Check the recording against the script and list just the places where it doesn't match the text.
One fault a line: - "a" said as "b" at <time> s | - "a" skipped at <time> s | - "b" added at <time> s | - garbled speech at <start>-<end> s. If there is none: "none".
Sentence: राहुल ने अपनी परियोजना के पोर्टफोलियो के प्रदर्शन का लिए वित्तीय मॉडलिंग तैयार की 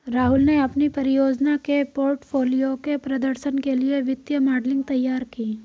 - "का" said as "के" at 3.6 s